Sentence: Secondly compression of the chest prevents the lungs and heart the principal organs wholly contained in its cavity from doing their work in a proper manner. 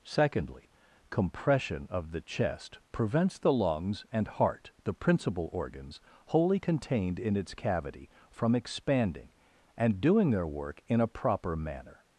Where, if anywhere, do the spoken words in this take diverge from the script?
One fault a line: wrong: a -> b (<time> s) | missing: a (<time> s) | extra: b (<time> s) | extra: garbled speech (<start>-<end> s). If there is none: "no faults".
extra: expanding and (8.5 s)